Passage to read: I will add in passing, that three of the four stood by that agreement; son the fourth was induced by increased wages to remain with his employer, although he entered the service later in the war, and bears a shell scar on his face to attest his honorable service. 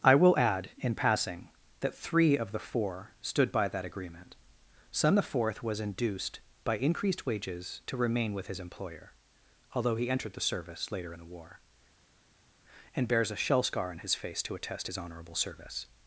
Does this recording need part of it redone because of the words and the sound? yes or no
no